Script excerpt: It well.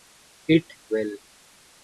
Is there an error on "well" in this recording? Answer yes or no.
no